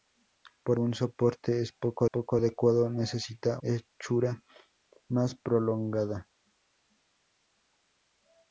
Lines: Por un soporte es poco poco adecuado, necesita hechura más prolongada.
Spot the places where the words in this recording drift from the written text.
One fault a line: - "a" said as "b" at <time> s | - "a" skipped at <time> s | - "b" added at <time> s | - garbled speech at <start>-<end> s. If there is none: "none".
none